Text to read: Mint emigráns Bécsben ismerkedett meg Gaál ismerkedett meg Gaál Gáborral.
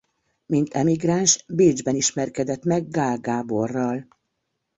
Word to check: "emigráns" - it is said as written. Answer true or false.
true